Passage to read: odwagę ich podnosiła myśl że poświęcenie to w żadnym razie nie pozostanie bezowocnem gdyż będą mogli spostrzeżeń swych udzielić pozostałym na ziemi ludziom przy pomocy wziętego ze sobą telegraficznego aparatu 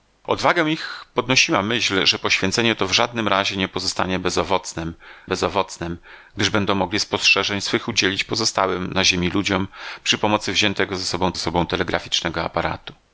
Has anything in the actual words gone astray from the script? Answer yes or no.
yes